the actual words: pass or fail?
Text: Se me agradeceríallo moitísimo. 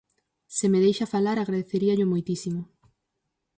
fail